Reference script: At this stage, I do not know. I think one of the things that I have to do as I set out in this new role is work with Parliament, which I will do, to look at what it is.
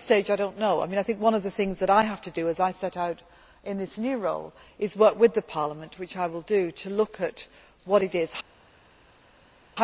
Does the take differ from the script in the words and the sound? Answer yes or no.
no